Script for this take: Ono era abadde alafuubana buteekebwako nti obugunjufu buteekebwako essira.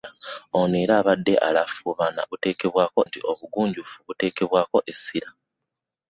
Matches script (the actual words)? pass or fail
pass